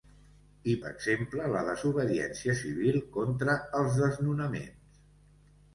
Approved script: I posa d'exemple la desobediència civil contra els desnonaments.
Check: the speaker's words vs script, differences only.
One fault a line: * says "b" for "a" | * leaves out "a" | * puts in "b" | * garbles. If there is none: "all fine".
* leaves out "posa"